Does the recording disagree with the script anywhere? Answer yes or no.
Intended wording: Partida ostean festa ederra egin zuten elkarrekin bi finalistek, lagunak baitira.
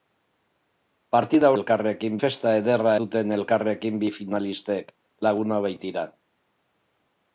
yes